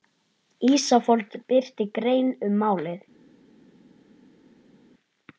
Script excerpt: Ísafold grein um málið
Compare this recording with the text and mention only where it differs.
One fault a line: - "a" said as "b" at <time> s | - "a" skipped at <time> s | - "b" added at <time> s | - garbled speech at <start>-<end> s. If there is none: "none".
- "birti" added at 1.5 s